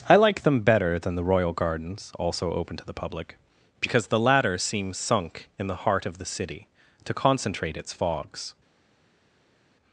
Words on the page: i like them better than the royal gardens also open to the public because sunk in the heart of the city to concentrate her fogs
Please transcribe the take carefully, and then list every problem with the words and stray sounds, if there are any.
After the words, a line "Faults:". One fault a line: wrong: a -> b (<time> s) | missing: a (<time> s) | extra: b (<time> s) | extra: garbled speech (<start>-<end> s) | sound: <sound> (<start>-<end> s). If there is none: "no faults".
i like them better than the royal gardens also open to the public because the latter seem sunk in the heart of the city to concentrate its fogs
Faults:
extra: the latter seem (4.1 s)
wrong: her -> its (7.8 s)